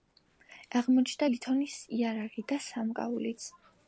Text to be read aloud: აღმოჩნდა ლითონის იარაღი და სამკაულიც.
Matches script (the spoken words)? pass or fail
pass